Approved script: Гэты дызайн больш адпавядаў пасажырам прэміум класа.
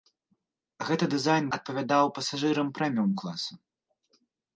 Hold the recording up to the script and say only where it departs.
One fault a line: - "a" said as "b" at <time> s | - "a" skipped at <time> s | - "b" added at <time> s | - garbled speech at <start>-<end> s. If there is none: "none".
- "больш" skipped at 1.4 s